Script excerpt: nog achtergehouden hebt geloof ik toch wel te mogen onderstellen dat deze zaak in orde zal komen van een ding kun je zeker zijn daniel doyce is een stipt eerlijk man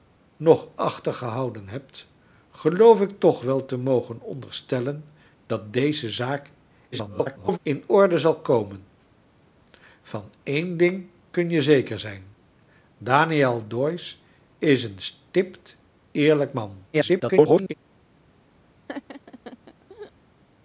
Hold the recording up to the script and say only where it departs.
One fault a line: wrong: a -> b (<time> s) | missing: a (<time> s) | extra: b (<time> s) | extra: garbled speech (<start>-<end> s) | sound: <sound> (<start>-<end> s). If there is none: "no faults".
extra: garbled speech (6.9-7.6 s)
extra: garbled speech (16.9-17.7 s)
sound: laugh (18.9-20.1 s)